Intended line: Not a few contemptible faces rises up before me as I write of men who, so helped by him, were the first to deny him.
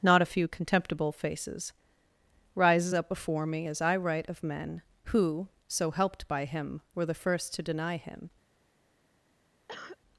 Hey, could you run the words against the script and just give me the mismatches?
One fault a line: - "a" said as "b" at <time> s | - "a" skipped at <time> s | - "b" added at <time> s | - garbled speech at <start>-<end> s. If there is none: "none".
none